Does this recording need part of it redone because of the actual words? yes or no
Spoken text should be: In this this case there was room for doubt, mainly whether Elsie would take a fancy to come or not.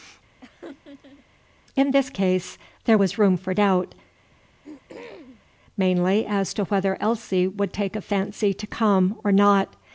yes